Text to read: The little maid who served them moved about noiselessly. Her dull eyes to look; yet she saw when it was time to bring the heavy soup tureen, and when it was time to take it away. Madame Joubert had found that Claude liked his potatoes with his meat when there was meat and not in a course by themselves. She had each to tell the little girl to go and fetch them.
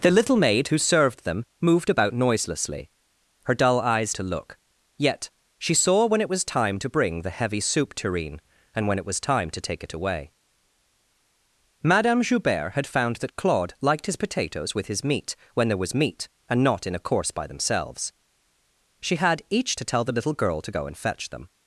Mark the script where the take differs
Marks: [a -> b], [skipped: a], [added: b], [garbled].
The little maid who served them moved about noiselessly. Her dull eyes to look; yet she saw when it was time to bring the heavy soup tureen, and when it was time to take it away. Madame Joubert had found that Claude liked his potatoes with his meat when there was meat and not in a course by themselves. She had each to tell the little girl to go and fetch them.